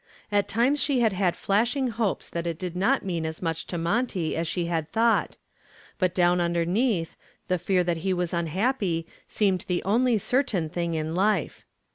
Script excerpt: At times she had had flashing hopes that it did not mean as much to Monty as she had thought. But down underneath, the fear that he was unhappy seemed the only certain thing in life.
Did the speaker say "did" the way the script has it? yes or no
yes